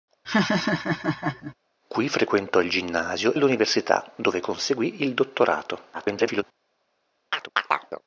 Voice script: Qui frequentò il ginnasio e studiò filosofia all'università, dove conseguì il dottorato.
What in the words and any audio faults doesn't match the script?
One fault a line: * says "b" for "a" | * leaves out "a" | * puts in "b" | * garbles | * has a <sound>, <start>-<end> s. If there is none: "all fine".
* has a laugh, 0.2-1.5 s
* leaves out "e studiò filosofia"
* garbles
* has a chirp, 7.3-8.0 s